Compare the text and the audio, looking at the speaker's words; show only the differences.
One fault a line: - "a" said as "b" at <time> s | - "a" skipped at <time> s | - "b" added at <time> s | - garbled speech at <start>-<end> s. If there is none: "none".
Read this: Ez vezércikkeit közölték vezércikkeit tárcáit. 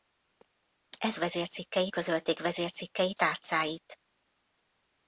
none